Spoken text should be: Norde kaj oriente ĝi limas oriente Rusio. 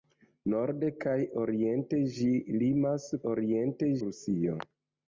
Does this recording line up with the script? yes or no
yes